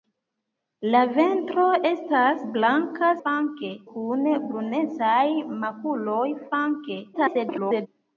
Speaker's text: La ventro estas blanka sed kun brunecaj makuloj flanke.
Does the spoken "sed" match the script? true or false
false